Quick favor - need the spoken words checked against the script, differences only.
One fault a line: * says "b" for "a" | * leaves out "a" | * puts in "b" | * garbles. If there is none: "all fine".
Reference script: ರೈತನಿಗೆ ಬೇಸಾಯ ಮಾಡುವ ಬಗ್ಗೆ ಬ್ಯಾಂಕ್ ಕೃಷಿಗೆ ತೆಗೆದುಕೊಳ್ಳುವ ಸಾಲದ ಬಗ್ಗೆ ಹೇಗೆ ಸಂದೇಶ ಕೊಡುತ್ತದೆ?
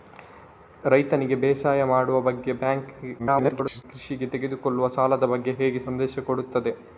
* garbles